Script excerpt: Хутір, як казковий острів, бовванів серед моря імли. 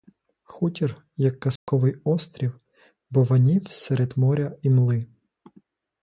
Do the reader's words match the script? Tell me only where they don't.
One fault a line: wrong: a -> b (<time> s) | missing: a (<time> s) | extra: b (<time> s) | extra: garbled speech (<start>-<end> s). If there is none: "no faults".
no faults